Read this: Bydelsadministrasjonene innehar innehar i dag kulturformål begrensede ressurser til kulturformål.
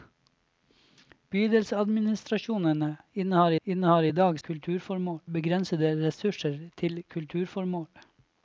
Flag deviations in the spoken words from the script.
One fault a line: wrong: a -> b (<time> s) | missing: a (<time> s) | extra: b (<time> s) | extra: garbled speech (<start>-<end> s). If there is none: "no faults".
no faults